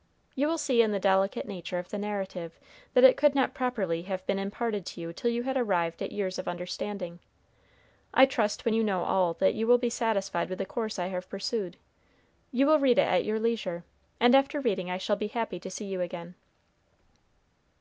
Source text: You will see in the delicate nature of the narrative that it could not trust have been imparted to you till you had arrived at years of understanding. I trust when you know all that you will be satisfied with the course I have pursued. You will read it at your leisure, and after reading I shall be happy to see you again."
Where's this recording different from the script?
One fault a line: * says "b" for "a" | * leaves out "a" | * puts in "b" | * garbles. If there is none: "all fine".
* says "properly" for "trust"